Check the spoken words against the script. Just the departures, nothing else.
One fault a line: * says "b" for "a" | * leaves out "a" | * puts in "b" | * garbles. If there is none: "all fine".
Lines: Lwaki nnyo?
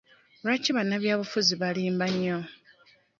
* puts in "bannabyabufuzi balimba"